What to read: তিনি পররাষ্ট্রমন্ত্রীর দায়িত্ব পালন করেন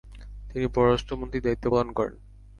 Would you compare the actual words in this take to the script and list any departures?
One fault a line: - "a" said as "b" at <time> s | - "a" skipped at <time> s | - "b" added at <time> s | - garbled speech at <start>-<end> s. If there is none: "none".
none